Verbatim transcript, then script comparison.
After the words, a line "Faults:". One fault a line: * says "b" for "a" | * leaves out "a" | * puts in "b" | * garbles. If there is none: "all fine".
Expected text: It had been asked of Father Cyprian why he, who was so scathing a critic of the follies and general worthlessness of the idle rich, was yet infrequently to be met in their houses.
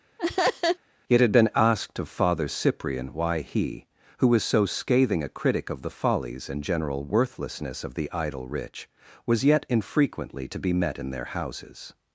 It had been asked of Father Cyprian why he, who was so scathing a critic of the follies and general worthlessness of the idle rich, was yet infrequently to be met in their houses.
Faults:
all fine